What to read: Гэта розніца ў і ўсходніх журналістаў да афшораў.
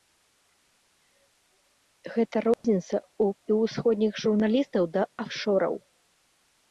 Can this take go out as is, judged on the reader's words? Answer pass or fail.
pass